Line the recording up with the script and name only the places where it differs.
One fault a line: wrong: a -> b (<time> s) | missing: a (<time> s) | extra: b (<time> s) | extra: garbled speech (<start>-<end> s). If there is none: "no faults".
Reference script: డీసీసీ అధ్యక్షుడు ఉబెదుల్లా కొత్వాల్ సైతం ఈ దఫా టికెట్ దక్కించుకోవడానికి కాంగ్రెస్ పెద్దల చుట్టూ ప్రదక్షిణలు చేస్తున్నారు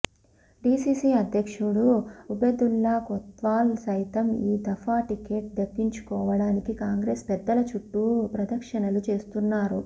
no faults